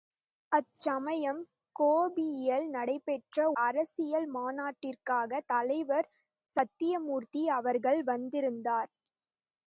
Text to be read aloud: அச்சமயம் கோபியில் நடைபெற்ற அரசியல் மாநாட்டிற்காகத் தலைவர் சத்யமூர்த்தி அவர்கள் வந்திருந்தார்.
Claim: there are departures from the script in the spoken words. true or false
false